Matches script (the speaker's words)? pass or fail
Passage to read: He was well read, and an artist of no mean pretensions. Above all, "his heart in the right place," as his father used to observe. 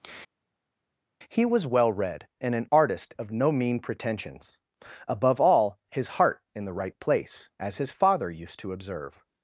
pass